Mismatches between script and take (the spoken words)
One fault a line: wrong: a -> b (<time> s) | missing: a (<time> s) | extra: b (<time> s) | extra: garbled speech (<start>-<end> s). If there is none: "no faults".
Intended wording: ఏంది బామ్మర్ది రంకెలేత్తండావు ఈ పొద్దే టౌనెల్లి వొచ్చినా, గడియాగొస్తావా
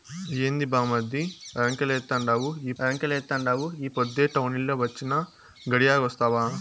extra: రంకెలేత్తండావు ఈ (2.8 s)